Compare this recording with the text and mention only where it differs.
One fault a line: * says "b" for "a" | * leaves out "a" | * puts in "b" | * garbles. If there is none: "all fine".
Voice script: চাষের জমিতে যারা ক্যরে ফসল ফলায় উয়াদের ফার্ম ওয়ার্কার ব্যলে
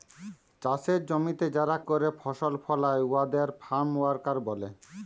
all fine